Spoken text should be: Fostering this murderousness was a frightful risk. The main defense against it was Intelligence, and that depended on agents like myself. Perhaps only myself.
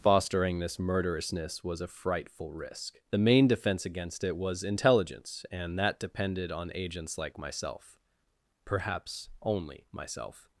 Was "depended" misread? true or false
false